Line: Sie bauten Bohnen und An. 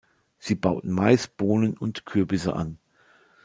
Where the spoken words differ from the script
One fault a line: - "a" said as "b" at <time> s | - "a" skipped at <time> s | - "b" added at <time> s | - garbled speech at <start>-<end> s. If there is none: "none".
- "Mais" added at 0.9 s
- "Kürbisse" added at 2.0 s